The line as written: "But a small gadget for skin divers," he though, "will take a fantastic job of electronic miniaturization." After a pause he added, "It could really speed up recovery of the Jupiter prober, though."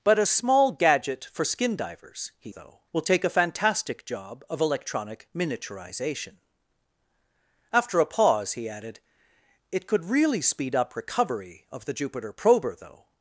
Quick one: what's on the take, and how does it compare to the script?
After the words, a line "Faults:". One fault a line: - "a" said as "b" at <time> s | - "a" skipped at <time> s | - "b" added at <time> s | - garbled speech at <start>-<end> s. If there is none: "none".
"But a small gadget for skin divers," he though, "will take a fantastic job of electronic miniaturization." After a pause he added, "It could really speed up recovery of the Jupiter prober, though."
Faults:
none